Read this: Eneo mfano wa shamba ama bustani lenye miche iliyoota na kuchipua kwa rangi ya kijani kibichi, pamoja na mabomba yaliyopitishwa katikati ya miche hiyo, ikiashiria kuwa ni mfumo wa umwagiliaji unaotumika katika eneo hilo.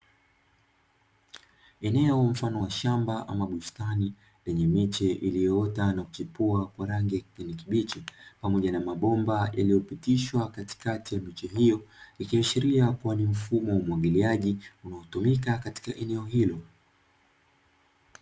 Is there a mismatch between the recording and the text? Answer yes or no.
no